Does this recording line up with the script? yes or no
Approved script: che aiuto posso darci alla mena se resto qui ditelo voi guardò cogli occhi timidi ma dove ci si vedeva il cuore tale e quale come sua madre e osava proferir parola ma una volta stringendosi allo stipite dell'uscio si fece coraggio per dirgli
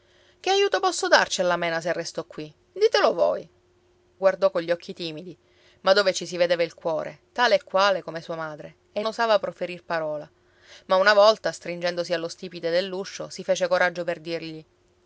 yes